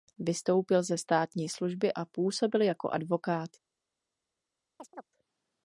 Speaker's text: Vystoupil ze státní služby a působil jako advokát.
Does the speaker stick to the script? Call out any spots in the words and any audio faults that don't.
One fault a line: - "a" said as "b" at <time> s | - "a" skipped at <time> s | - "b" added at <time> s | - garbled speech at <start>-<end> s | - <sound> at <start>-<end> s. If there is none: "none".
- chirp at 4.8-5.1 s